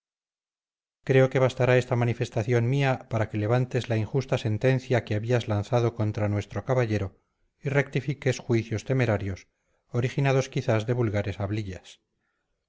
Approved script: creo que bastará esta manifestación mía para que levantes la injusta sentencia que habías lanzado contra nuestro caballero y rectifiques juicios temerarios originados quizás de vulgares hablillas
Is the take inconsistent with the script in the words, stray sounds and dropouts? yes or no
no